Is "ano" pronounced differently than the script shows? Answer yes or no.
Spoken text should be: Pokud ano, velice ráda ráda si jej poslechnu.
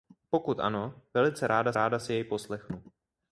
no